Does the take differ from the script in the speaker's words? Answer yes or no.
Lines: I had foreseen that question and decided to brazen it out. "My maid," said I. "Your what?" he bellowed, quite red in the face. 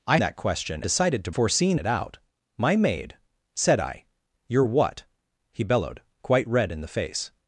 yes